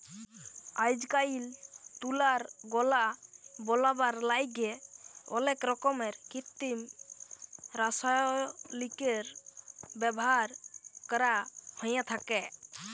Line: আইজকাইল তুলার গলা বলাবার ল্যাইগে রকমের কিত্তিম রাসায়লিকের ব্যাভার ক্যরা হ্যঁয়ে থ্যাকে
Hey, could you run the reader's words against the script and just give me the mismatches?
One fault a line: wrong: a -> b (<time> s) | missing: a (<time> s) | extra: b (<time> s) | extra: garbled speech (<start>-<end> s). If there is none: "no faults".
extra: অলেক (5.3 s)